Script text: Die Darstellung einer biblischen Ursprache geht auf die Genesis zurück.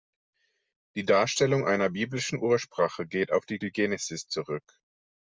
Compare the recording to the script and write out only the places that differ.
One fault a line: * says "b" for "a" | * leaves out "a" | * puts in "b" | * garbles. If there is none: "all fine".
* puts in "die"